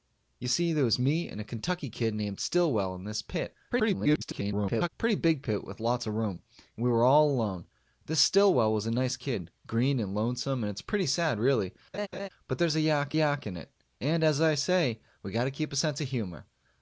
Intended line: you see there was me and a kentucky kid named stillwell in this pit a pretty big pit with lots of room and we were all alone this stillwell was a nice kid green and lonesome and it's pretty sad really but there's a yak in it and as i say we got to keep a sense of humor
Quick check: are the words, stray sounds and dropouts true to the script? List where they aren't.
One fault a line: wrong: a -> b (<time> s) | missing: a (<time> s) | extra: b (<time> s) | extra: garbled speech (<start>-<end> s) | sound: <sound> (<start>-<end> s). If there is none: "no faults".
extra: garbled speech (3.7-4.9 s)
sound: laugh (11.9-12.3 s)
extra: yak (13.1 s)